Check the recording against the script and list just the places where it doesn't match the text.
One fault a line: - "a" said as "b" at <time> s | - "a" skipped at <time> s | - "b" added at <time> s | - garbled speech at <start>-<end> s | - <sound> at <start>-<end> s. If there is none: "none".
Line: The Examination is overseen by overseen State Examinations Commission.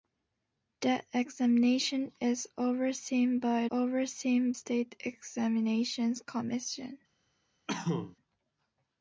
- cough at 7.7-8.2 s